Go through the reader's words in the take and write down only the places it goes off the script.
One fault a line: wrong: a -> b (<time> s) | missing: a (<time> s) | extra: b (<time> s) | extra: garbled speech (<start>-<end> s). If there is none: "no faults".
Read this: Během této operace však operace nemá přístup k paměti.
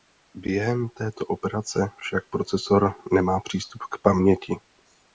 wrong: operace -> procesor (2.3 s)